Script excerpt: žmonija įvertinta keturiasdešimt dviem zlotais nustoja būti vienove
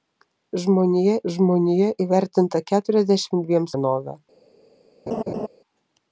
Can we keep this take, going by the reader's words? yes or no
no